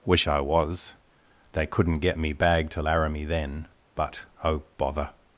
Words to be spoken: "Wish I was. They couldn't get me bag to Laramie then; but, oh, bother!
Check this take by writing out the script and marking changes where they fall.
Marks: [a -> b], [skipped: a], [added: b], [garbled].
"Wish I was. They couldn't get me bag to Laramie then; but, oh, bother!